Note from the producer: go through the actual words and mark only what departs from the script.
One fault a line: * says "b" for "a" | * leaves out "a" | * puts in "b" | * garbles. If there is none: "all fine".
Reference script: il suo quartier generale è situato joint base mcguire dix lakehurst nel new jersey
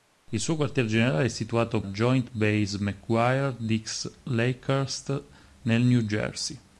all fine